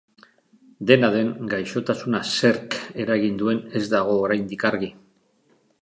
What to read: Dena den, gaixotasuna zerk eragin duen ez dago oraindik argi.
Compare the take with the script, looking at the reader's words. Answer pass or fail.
pass